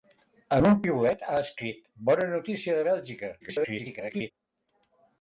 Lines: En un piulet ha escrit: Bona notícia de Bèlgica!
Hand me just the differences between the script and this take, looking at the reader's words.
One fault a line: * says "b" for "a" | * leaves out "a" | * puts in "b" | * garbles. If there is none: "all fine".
* garbles